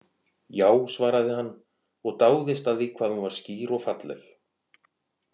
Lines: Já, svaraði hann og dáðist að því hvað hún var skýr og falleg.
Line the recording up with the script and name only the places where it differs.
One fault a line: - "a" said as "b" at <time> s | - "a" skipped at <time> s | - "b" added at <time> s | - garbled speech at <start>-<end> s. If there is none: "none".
none